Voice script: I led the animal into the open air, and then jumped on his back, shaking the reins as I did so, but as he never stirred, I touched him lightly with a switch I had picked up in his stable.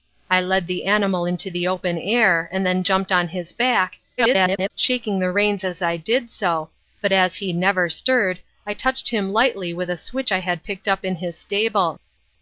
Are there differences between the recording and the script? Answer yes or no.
yes